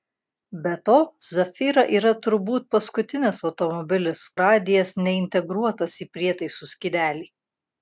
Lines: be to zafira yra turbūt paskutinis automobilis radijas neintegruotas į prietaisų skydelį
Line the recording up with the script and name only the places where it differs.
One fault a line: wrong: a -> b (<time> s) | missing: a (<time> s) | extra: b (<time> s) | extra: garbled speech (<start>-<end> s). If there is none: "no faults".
no faults